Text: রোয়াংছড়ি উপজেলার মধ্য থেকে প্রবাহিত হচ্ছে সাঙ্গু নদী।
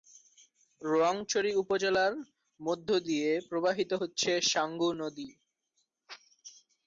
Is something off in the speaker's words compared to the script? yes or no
yes